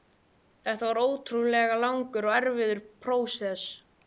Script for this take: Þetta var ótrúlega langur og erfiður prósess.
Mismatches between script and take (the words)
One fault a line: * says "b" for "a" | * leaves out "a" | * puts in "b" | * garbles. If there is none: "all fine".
all fine